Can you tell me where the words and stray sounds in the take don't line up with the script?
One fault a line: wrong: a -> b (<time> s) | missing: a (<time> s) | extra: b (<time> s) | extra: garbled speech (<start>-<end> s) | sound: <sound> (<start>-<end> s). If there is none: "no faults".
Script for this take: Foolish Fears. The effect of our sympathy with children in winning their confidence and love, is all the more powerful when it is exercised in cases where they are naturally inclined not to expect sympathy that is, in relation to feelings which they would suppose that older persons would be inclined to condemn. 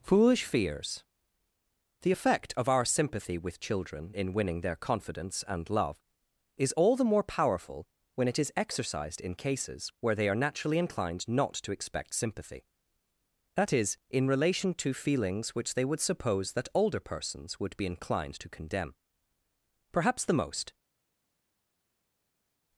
extra: Perhaps the most (19.9 s)